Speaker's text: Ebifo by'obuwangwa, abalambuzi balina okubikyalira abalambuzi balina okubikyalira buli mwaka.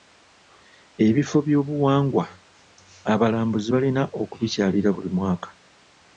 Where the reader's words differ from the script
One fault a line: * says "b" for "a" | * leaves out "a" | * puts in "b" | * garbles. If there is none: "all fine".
* leaves out "abalambuzi balina okubikyalira"